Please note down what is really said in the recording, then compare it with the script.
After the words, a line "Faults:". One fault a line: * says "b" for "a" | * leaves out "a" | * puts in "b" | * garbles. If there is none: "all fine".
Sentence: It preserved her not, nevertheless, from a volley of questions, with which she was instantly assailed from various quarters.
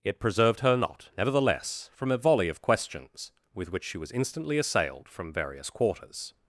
It preserved her not, nevertheless, from a volley of questions, with which she was instantly assailed from various quarters.
Faults:
all fine